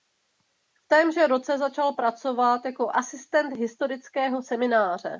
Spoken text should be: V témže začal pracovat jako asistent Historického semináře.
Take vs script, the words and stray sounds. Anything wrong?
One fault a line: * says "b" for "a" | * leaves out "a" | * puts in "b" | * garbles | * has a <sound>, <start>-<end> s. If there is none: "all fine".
* puts in "roce"